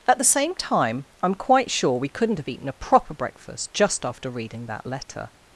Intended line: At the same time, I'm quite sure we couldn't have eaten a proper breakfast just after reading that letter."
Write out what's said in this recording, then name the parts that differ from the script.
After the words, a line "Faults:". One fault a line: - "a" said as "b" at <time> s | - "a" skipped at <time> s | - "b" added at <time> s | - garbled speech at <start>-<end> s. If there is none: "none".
At the same time, I'm quite sure we couldn't have eaten a proper breakfast just after reading that letter."
Faults:
none